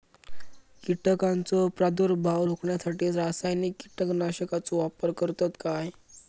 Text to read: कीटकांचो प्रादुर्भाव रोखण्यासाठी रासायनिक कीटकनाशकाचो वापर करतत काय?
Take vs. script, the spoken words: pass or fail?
pass